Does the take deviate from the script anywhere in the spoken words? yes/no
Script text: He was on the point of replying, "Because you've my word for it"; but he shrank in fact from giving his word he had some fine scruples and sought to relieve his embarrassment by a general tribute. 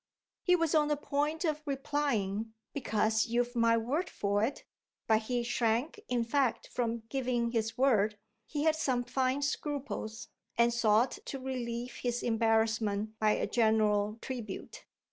no